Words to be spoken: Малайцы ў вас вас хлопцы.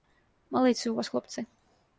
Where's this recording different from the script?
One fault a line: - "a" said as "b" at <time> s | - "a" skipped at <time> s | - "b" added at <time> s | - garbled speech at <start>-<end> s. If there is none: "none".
- "вас" skipped at 1.1 s